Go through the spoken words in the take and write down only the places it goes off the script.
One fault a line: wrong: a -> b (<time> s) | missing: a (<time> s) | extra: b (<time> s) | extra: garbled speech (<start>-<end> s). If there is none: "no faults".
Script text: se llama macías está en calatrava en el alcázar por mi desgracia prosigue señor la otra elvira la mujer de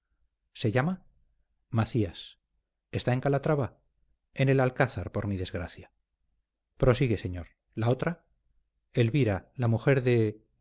no faults